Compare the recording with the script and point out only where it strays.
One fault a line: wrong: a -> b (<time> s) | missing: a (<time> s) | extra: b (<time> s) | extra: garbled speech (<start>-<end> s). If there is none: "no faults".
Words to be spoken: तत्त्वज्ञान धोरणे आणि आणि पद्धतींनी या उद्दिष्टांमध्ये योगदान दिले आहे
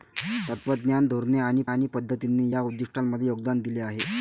no faults